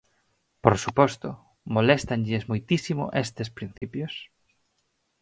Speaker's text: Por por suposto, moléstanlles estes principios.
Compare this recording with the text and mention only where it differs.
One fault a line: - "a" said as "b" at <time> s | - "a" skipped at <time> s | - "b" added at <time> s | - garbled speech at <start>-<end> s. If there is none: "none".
- "por" skipped at 0.8 s
- "moitísimo" added at 2.5 s